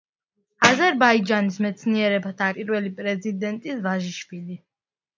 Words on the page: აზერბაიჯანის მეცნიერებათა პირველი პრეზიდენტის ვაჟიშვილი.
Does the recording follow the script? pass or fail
pass